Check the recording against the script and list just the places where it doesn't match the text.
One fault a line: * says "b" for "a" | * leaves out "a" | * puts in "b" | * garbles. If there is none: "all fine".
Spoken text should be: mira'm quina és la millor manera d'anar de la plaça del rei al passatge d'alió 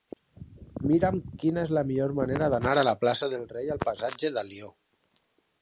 all fine